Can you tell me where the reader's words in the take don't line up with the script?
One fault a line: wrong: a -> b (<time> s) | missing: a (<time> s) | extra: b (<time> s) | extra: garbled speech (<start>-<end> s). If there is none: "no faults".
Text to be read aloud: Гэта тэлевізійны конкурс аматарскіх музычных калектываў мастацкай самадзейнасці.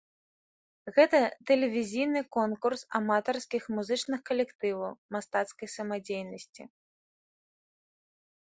no faults